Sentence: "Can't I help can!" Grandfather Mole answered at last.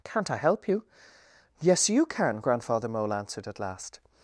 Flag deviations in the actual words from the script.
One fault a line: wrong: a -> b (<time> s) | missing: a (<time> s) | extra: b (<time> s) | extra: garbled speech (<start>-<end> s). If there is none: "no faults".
extra: you Yes you (0.7 s)